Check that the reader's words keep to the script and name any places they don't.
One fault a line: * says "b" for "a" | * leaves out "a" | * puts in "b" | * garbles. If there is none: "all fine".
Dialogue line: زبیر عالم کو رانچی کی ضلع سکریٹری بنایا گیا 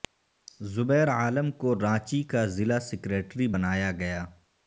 * says "کا" for "کی"